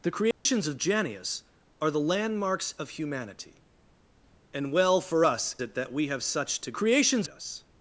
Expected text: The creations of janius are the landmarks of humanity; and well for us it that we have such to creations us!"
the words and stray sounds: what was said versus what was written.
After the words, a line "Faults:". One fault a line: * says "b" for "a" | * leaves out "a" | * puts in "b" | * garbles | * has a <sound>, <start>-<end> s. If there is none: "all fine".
The creations of janius are the landmarks of humanity; and well for us it that we have such to creations us!"
Faults:
* has a dropout, 0.3-0.5 s